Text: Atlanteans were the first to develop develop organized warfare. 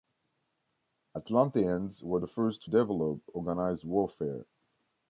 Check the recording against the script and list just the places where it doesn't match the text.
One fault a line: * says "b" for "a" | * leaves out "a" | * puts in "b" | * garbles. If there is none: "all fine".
* leaves out "develop"